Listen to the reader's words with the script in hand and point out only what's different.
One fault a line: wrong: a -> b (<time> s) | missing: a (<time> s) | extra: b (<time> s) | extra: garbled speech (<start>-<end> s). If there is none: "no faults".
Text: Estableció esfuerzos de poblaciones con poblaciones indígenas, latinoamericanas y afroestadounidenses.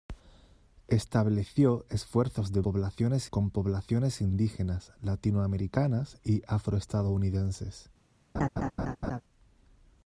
no faults